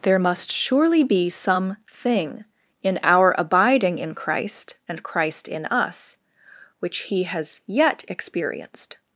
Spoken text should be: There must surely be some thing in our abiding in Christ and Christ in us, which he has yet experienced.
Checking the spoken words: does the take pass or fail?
pass